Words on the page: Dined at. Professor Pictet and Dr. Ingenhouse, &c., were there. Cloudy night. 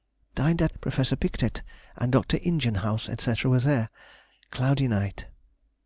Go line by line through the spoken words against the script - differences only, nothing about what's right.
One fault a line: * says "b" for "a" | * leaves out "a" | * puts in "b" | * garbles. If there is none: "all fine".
all fine